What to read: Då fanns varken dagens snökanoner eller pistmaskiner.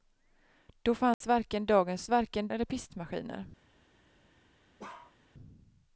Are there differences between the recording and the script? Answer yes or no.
yes